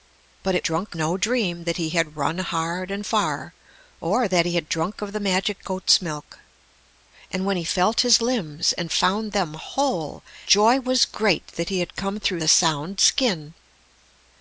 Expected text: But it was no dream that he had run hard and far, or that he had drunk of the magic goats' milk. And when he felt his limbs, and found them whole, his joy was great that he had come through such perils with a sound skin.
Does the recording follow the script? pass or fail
fail